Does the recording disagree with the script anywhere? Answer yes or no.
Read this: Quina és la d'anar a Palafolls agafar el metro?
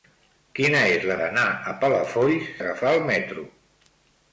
no